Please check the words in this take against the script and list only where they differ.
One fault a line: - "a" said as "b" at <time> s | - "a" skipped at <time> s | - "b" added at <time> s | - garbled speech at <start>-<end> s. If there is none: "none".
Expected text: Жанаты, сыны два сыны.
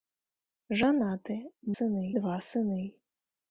none